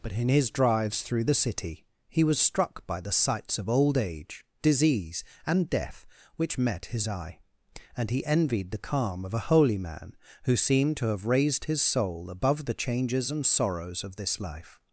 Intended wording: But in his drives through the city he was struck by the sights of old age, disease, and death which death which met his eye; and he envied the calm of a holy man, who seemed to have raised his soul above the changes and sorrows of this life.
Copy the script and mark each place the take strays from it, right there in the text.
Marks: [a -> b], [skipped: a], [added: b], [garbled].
But in his drives through the city he was struck by the sights of old age, disease, and death which [skipped: death which] met his eye; and he envied the calm of a holy man, who seemed to have raised his soul above the changes and sorrows of this life.